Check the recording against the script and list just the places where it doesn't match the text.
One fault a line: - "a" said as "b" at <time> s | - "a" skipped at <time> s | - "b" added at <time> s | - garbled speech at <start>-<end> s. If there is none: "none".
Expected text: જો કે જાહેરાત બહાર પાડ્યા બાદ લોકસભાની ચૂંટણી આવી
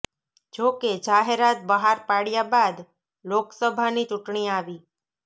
none